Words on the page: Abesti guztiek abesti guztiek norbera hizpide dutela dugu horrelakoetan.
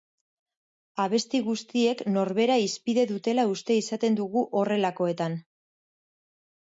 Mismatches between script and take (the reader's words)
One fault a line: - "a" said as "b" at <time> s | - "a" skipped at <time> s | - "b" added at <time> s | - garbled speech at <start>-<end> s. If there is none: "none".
- "abesti guztiek" skipped at 2.0 s
- "uste izaten" added at 3.5 s